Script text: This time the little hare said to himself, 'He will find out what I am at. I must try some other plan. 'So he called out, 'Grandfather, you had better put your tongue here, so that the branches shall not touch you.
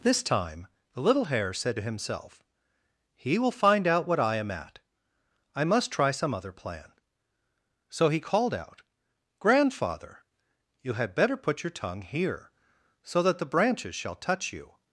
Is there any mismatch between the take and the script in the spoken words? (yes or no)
yes